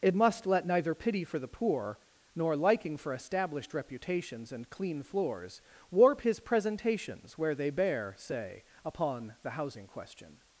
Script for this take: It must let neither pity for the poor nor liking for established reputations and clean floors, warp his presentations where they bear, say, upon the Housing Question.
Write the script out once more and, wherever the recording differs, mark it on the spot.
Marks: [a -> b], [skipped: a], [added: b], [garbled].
It must let neither pity for the poor nor liking for established reputations and clean floors, warp his presentations where they bear, say, upon the Housing Question.